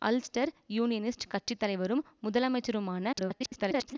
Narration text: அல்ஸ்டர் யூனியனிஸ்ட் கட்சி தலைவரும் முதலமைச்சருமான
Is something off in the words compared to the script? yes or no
yes